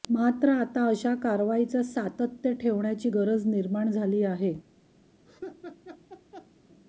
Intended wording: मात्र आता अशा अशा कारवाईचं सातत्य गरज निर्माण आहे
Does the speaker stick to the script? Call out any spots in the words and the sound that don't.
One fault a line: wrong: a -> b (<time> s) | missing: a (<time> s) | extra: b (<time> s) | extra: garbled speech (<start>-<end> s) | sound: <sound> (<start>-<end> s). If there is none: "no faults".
missing: अशा (1.1 s)
extra: ठेवण्याची (2.5 s)
extra: झाली (3.9 s)
sound: laugh (5.2-6.5 s)